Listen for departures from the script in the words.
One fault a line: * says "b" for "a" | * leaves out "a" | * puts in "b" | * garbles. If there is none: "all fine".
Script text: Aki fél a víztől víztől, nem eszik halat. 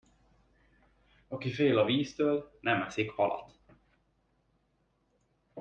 * leaves out "víztől"